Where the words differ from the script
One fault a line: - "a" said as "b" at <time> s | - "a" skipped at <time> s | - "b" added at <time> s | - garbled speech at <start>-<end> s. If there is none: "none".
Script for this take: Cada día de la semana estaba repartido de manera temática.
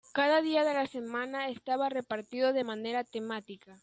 none